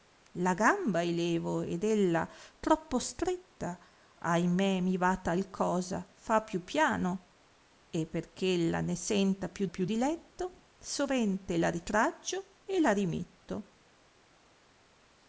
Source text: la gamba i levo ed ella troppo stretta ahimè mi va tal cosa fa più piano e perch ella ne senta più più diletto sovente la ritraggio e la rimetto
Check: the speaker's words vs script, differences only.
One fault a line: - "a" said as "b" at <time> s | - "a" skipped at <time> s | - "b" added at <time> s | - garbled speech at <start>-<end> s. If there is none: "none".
none